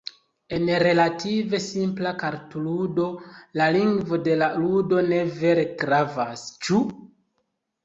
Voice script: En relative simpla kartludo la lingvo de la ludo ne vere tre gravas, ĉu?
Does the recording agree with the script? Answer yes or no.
no